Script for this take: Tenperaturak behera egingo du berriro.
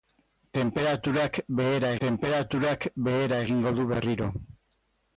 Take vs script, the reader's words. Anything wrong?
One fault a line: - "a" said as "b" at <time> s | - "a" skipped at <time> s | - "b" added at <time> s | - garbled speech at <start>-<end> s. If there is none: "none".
- "tenperaturak behera" added at 2.0 s